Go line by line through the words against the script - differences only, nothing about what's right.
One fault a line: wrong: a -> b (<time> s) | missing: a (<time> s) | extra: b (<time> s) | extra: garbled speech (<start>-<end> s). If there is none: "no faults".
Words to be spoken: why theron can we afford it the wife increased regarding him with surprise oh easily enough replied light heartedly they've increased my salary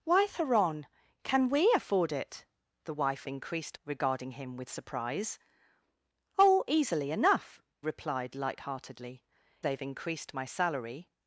no faults